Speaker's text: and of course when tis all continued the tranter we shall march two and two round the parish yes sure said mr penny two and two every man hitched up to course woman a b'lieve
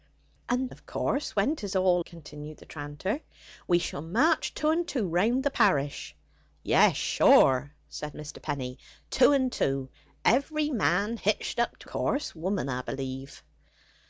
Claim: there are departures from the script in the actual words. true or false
false